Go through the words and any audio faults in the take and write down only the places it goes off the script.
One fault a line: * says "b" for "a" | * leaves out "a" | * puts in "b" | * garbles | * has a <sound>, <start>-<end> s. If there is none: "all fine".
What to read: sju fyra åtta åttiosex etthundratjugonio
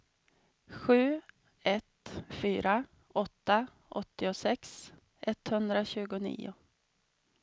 * puts in "ett"